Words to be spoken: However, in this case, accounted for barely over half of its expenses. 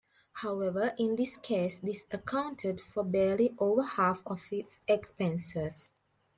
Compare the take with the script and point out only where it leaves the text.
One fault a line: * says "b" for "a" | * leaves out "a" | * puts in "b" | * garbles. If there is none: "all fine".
* puts in "this"